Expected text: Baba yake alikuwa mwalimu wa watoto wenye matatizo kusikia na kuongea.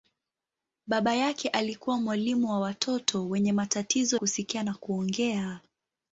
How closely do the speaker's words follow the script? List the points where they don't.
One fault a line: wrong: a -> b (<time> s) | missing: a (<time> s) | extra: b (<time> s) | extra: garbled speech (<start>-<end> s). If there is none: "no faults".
no faults